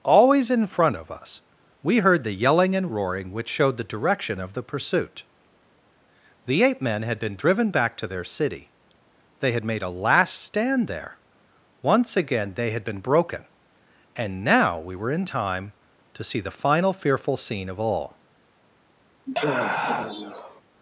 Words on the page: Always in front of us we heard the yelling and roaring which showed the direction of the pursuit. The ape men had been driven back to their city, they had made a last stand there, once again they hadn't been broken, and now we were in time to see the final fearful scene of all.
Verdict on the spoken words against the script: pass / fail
fail